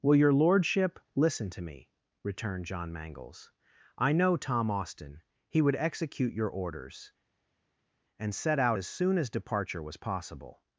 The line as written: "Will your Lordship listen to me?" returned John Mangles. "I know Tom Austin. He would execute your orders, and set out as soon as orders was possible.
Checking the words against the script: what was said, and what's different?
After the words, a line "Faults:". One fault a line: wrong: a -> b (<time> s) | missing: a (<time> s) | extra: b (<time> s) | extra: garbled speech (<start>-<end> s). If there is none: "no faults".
"Will your Lordship listen to me?" returned John Mangles. "I know Tom Austin. He would execute your orders, and set out as soon as departure was possible.
Faults:
wrong: orders -> departure (9.3 s)